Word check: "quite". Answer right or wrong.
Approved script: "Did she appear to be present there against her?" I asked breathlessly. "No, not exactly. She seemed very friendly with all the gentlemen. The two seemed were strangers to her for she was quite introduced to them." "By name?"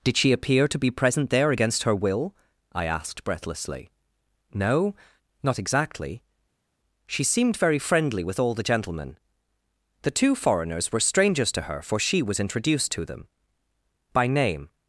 wrong